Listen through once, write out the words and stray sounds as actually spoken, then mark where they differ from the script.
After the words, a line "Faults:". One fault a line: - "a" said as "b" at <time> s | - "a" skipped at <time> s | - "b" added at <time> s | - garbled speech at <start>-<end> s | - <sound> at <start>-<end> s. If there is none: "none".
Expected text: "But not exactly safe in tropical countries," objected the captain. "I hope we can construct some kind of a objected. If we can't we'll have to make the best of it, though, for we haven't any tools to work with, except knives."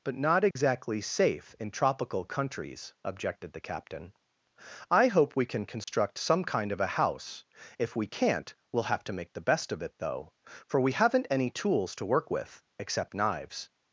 "But not exactly safe in tropical countries," objected the captain. "I hope we can construct some kind of a house. If we can't we'll have to make the best of it, though, for we haven't any tools to work with, except knives."
Faults:
- dropout at 0.5-0.6 s
- dropout at 5.8-5.9 s
- "objected" said as "house" at 6.9 s